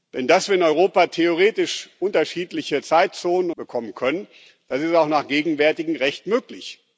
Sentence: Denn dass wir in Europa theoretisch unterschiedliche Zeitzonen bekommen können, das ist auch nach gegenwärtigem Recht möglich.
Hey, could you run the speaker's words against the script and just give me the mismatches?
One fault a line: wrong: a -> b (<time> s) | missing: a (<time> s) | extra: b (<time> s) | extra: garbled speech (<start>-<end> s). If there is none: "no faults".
no faults